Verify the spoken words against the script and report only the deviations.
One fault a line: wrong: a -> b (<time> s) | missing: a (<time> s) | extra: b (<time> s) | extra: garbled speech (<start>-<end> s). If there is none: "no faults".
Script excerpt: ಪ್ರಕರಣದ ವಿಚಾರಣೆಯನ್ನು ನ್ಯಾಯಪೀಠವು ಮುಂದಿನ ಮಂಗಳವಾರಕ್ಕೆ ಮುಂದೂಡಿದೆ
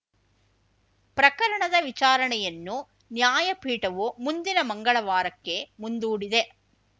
no faults